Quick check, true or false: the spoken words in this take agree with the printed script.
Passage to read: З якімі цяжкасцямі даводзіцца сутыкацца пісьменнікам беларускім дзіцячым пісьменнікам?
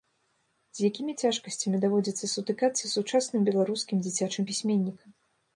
false